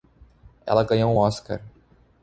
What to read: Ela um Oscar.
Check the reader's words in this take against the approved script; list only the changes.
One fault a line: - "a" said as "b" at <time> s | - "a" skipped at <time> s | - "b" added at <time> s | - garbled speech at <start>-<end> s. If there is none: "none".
- "ganhou" added at 0.8 s